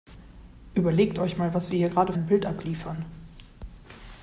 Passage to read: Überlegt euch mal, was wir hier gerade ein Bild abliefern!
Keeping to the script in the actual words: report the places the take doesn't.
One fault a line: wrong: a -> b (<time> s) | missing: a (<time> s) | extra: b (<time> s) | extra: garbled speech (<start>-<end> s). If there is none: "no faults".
no faults